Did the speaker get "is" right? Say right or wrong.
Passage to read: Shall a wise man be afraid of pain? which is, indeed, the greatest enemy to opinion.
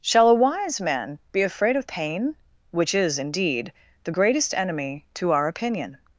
right